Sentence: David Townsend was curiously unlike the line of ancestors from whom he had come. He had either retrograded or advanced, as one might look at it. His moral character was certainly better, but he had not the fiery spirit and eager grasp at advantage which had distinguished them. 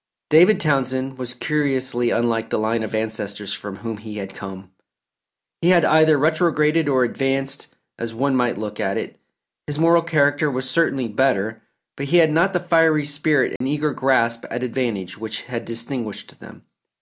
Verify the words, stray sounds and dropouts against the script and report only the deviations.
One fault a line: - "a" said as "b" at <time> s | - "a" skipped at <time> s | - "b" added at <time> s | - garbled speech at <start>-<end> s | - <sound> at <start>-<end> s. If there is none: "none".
- dropout at 13.6-13.6 s